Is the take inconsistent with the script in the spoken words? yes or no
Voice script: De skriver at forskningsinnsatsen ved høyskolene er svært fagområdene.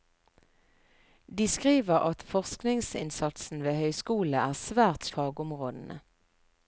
no